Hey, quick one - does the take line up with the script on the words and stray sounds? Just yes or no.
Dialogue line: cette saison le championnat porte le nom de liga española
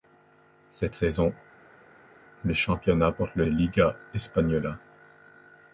no